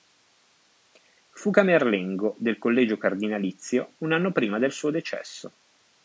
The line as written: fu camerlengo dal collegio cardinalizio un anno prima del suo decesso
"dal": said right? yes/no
no